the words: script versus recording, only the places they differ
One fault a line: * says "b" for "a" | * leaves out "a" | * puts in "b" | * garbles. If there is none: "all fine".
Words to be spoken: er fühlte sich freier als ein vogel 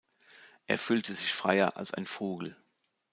all fine